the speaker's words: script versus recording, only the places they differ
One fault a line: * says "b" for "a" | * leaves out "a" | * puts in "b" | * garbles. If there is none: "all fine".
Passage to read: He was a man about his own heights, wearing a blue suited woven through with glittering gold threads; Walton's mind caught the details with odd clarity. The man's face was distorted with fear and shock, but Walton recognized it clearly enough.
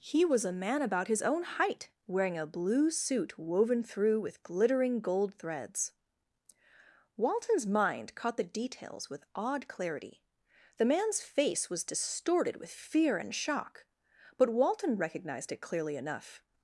* says "height" for "heights"
* says "suit" for "suited"